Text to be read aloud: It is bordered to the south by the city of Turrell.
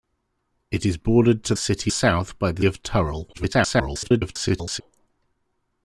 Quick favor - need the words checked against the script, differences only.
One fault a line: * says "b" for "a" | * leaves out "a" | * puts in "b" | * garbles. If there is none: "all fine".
* says "city" for "the"
* leaves out "city"
* garbles